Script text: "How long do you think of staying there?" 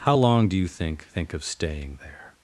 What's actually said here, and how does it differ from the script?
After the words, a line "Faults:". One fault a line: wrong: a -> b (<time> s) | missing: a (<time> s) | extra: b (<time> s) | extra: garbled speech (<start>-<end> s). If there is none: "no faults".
"How long do you think think of staying there?"
Faults:
extra: think (1.0 s)